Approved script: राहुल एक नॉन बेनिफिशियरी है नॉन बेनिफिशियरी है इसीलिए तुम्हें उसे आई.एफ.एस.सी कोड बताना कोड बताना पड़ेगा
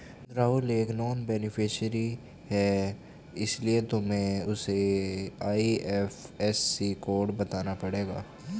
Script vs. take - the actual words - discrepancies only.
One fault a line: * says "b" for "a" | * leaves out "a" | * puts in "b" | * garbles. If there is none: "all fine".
* leaves out "नॉन बेनिफिशियरी है"
* leaves out "कोड बताना"